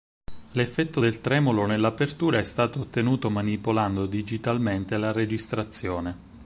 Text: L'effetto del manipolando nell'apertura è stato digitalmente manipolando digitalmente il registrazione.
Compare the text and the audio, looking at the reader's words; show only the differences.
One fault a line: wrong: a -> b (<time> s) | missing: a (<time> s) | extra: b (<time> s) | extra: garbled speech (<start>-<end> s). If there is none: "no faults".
wrong: manipolando -> tremolo (1.2 s)
wrong: digitalmente -> ottenuto (2.8 s)
wrong: il -> la (5.0 s)